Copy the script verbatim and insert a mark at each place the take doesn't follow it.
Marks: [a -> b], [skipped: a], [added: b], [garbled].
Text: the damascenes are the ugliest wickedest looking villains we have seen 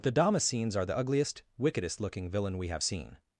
the damascenes are the ugliest wickedest looking [villains -> villain] we have seen